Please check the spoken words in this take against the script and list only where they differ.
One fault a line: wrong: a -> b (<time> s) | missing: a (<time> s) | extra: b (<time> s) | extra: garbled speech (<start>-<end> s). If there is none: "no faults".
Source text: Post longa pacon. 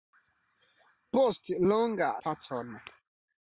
no faults